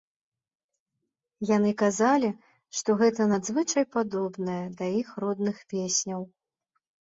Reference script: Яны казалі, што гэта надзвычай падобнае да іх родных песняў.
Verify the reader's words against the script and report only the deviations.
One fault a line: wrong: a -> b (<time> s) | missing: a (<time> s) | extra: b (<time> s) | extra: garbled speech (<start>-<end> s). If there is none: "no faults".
no faults